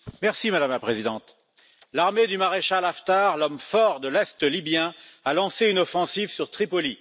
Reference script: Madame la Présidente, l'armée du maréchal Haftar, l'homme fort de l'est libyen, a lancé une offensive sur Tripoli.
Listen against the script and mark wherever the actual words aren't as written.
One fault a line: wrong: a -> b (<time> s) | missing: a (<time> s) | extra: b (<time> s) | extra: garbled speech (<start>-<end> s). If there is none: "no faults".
no faults